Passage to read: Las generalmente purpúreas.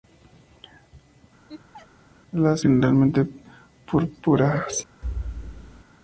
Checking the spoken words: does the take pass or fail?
pass